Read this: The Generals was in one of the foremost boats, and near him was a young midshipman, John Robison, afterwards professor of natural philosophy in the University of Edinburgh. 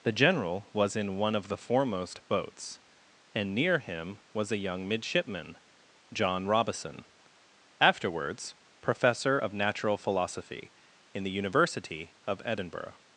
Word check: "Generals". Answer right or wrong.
wrong